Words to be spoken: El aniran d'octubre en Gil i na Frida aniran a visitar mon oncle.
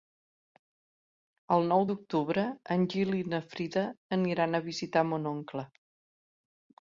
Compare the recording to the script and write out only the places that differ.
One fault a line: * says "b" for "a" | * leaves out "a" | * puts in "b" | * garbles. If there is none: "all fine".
* says "nou" for "aniran"